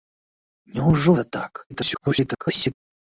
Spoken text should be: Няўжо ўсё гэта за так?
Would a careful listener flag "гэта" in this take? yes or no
yes